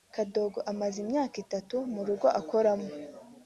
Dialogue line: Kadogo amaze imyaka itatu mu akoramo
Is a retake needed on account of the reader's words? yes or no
yes